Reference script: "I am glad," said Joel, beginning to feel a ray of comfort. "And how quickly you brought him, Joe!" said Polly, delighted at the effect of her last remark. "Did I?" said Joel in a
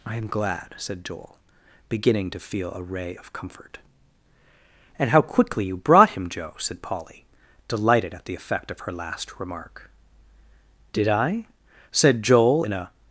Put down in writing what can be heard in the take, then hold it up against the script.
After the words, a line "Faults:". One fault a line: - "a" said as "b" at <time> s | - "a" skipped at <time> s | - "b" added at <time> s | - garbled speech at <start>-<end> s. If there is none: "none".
"I am glad," said Joel, beginning to feel a ray of comfort. "And how quickly you brought him, Joe!" said Polly, delighted at the effect of her last remark. "Did I?" said Joel in a
Faults:
none